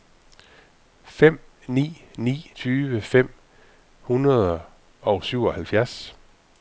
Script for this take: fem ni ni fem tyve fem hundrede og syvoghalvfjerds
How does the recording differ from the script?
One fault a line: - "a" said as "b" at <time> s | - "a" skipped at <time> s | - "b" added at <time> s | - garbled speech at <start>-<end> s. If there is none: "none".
- "fem" skipped at 2.5 s